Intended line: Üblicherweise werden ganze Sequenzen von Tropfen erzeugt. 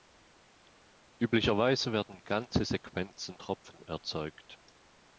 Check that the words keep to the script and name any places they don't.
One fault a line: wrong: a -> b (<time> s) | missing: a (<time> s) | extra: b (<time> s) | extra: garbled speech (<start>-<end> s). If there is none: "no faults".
missing: von (3.4 s)